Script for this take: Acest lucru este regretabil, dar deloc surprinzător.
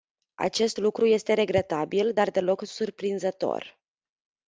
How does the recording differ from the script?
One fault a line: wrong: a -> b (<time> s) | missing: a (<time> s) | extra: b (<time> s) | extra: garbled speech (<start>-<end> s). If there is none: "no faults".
no faults